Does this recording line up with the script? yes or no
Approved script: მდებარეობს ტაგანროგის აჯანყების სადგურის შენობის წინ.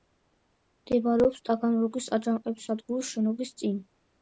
yes